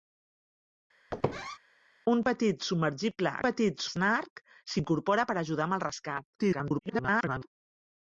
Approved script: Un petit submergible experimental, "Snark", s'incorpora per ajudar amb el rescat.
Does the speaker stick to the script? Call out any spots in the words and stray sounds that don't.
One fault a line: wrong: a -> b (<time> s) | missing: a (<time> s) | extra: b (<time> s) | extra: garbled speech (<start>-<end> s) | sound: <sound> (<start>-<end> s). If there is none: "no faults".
sound: squeak (1.1-1.6 s)
wrong: experimental -> petit (3.4 s)
extra: garbled speech (6.4-7.5 s)